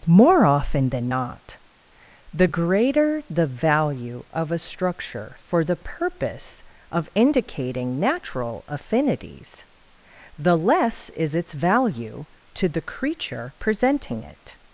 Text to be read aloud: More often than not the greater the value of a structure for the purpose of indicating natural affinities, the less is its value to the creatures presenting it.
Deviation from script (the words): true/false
true